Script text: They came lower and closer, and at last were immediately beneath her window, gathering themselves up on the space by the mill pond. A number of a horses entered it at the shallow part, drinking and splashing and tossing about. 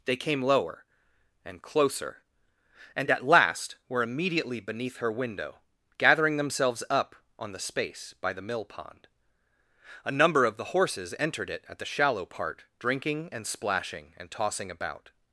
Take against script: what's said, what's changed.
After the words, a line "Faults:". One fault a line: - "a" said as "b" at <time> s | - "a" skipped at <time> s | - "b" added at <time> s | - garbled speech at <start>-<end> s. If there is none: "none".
They came lower and closer, and at last were immediately beneath her window, gathering themselves up on the space by the mill pond. A number of the horses entered it at the shallow part, drinking and splashing and tossing about.
Faults:
- "a" said as "the" at 10.6 s